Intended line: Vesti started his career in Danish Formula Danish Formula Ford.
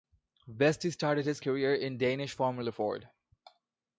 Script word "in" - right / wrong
right